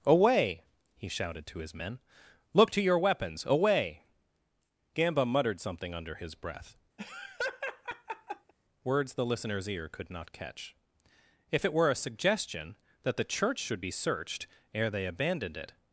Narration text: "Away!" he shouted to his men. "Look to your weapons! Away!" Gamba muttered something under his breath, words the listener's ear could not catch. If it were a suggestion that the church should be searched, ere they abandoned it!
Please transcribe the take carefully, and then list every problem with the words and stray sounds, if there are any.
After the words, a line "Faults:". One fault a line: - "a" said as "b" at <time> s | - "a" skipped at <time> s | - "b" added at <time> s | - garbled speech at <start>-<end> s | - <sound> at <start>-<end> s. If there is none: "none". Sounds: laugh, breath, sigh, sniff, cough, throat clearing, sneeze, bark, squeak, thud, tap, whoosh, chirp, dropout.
"Away!" he shouted to his men. "Look to your weapons! Away!" Gamba muttered something under his breath, words the listener's ear could not catch. If it were a suggestion that the church should be searched, ere they abandoned it!
Faults:
- laugh at 7.0-8.5 s